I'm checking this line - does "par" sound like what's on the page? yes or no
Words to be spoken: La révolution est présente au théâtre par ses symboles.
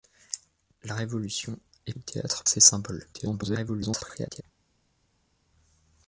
no